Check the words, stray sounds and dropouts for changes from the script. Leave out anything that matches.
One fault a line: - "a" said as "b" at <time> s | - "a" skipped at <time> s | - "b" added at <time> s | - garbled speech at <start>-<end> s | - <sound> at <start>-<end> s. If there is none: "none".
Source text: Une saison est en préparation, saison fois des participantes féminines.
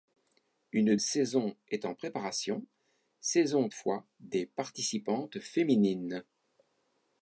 none